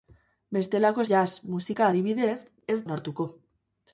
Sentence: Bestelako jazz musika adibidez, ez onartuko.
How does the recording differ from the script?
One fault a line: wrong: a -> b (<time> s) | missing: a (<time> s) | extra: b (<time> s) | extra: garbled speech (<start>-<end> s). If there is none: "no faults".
no faults